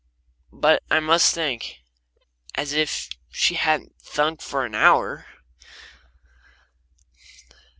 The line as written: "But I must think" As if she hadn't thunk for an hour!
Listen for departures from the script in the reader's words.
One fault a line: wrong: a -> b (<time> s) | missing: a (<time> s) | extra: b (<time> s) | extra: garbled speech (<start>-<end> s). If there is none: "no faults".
no faults